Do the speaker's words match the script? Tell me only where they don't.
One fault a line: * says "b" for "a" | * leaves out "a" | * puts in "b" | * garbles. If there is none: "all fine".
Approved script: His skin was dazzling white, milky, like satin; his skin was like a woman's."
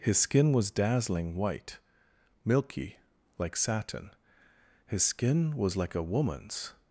all fine